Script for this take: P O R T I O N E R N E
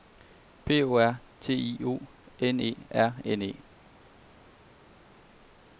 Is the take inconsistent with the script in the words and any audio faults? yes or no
no